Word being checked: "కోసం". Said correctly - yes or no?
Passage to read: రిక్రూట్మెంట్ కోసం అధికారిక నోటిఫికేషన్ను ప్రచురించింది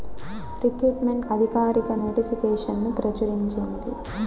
no